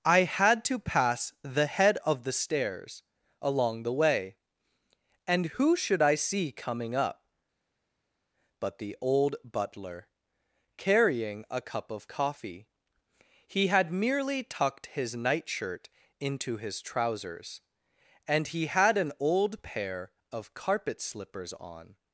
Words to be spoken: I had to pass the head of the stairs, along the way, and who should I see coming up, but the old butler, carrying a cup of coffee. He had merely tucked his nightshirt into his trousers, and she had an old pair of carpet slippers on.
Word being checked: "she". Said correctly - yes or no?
no